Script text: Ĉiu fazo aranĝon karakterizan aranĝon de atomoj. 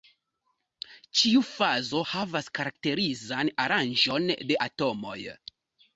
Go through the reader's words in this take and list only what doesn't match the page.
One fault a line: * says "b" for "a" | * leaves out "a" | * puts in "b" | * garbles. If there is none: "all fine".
* says "havas" for "aranĝon"